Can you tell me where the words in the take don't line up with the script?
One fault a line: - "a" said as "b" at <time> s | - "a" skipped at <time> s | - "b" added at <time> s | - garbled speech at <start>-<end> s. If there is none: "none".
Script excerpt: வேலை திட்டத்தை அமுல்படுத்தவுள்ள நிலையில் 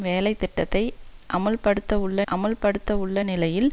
- "அமுல்படுத்தவுள்ள" added at 2.3 s